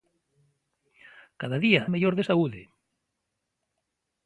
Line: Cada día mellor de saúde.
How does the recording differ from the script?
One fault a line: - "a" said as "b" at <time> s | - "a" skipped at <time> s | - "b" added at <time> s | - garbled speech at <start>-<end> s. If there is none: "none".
none